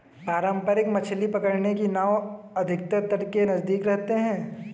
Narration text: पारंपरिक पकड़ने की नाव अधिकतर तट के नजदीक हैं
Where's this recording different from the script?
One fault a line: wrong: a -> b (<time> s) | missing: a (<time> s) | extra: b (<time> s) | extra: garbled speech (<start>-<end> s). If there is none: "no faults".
extra: मछली (0.9 s)
extra: रहते (3.9 s)